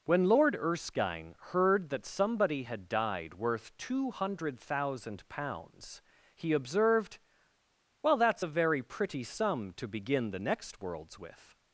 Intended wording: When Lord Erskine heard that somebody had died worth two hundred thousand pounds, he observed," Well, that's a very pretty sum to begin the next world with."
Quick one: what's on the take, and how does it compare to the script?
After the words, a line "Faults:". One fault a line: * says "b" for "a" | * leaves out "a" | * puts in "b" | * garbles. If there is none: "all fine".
When Lord Erskine heard that somebody had died worth two hundred thousand pounds, he observed," Well, that's a very pretty sum to begin the next worlds with."
Faults:
* says "worlds" for "world"